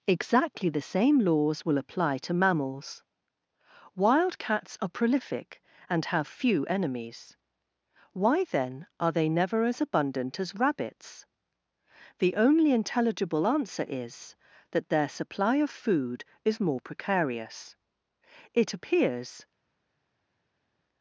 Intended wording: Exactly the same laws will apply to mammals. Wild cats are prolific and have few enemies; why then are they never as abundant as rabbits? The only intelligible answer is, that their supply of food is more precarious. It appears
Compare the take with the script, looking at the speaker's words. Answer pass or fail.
pass